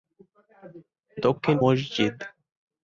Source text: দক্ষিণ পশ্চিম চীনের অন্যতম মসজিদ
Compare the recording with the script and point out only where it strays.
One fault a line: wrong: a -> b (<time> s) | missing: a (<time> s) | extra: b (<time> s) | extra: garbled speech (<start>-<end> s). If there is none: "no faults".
missing: পশ্চিম চীনের অন্যতম (1.6 s)